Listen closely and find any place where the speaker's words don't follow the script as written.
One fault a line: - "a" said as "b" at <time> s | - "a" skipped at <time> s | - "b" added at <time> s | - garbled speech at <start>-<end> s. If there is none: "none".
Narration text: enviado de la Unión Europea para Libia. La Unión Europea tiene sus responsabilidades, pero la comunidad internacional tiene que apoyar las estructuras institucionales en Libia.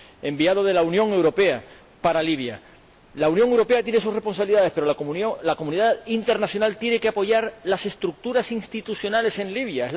none